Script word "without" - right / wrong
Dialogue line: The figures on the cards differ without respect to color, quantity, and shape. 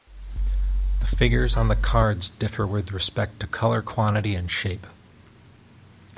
wrong